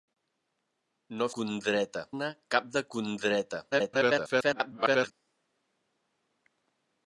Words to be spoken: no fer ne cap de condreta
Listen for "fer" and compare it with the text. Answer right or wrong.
wrong